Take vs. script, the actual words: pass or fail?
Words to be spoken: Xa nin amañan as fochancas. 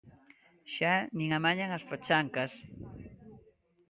pass